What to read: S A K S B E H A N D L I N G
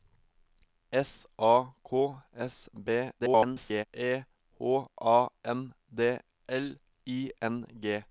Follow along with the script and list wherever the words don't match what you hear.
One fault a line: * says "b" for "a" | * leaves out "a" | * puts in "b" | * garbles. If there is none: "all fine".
* garbles